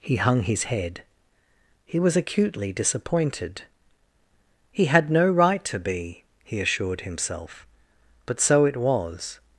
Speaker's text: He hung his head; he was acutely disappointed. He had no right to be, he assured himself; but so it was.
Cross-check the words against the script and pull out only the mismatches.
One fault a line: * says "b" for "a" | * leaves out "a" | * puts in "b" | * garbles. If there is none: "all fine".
all fine